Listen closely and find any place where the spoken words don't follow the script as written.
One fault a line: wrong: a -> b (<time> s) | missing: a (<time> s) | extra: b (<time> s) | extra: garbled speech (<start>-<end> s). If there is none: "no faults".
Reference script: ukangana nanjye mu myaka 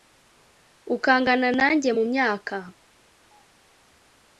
no faults